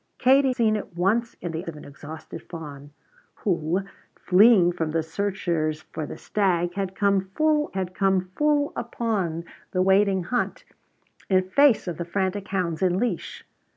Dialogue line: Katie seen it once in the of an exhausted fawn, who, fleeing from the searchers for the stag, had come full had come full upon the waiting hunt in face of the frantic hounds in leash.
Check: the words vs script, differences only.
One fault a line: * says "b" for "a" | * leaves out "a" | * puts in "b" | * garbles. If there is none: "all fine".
all fine